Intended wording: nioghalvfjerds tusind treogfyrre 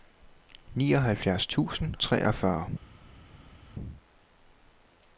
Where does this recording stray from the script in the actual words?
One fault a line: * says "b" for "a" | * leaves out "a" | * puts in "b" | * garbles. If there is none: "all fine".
all fine